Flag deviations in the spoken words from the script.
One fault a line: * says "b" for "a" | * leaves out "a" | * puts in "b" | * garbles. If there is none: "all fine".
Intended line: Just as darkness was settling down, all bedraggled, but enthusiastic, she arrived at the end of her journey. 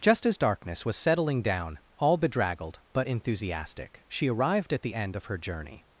all fine